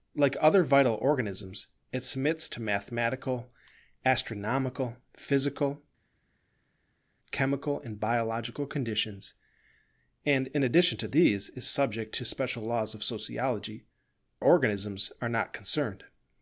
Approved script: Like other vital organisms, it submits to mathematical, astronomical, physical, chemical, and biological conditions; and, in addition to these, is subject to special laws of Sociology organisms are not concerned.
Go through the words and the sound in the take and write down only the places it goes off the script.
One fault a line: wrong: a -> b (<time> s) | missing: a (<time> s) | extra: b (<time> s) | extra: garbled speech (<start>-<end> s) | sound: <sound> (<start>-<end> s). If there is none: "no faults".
no faults